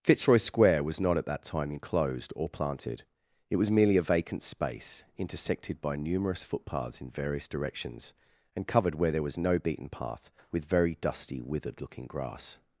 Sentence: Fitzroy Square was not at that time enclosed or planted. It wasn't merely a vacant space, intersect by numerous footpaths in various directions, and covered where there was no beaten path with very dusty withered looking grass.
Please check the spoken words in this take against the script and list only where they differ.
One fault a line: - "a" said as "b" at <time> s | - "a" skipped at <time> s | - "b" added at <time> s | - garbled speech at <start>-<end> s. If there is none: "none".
- "wasn't" said as "was" at 3.6 s
- "intersect" said as "intersected" at 5.2 s